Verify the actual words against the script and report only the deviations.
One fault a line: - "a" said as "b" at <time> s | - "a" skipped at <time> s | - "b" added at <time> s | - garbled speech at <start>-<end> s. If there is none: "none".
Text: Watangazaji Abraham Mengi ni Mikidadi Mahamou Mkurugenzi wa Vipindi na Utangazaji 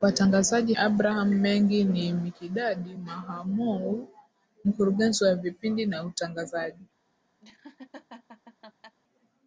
none